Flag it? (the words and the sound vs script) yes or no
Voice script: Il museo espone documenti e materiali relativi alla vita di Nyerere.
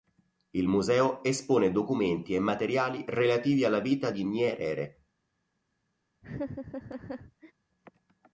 yes